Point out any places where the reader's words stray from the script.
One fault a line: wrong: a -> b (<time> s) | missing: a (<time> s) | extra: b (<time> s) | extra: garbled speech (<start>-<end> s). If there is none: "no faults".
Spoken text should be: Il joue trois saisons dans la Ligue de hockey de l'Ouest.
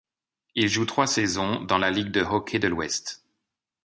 no faults